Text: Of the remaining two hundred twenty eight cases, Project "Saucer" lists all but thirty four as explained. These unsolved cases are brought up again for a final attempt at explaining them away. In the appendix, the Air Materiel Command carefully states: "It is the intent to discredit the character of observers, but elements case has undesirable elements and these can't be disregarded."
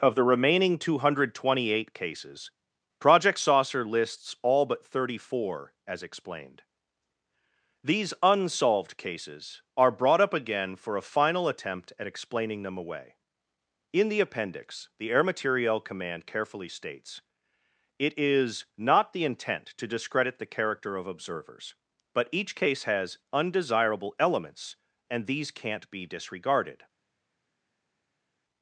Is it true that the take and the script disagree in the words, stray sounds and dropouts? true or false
true